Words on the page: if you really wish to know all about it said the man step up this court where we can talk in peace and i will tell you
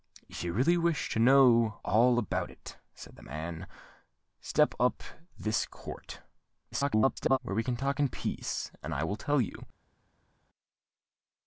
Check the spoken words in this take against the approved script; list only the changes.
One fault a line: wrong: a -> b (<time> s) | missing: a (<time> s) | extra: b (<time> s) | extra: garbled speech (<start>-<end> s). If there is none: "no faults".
extra: garbled speech (6.7-7.4 s)